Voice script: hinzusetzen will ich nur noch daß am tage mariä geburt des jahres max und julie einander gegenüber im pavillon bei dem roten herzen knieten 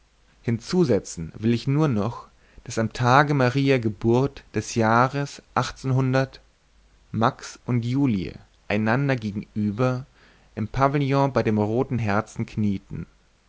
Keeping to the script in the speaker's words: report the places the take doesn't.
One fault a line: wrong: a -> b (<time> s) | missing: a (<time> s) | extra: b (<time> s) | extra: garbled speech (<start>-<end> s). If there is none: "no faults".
no faults